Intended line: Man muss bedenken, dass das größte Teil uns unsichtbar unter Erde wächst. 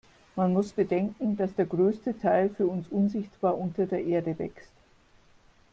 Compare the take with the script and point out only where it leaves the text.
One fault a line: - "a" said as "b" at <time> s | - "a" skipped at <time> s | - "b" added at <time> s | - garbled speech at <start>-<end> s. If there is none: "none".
- "das" said as "der" at 1.5 s
- "für" added at 2.5 s
- "der" added at 3.9 s